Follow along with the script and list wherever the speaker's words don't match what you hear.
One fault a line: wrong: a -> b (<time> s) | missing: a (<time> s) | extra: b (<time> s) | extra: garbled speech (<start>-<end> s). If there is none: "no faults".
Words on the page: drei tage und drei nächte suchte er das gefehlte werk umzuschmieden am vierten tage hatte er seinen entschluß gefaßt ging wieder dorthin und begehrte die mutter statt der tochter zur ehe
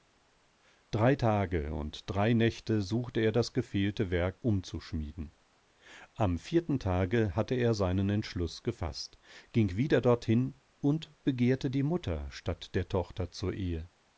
no faults